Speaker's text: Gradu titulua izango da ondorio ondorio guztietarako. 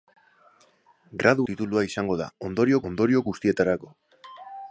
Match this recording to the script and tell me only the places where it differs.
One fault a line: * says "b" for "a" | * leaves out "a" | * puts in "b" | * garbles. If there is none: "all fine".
all fine